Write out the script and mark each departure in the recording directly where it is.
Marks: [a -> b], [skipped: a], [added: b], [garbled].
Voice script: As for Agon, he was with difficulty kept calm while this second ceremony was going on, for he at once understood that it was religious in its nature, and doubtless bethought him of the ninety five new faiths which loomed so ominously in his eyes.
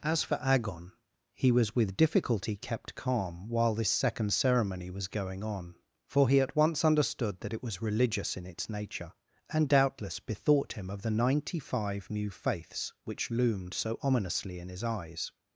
As for Agon, he was with difficulty kept calm while this second ceremony was going on, for he at once understood that it was religious in its nature, and doubtless bethought him of the ninety five new faiths which loomed so ominously in his eyes.